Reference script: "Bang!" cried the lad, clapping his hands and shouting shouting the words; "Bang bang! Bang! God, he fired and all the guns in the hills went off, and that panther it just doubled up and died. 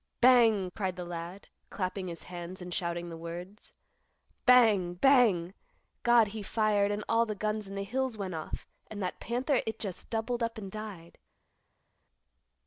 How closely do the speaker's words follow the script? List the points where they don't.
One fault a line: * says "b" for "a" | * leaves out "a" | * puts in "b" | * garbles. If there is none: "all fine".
* leaves out "shouting"
* leaves out "Bang"